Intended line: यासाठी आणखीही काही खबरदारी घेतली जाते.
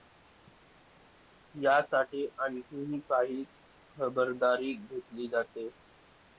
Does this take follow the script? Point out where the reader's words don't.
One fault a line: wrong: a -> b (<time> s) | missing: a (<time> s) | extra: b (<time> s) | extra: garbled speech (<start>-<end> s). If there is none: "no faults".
no faults